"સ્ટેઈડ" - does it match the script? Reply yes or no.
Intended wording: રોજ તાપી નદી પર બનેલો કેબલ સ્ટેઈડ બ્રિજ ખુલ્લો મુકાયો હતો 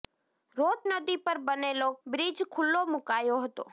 no